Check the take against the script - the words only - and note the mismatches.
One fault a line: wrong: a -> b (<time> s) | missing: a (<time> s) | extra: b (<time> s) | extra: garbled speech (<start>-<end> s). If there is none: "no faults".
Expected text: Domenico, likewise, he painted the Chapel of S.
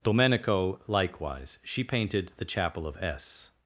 wrong: he -> she (1.6 s)